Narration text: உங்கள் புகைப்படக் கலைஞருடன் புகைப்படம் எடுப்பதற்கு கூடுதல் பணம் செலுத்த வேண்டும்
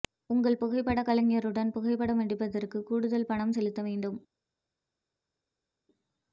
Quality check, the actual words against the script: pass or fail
pass